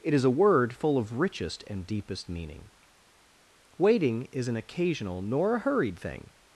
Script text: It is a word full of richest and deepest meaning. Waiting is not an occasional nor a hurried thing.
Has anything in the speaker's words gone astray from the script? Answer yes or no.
yes